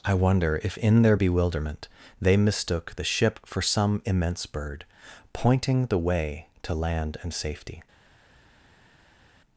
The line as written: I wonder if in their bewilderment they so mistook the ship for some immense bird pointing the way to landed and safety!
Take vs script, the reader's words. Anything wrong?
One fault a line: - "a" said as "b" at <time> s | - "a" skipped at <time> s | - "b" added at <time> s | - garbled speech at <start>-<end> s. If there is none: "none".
- "so" skipped at 2.4 s
- "landed" said as "land" at 6.7 s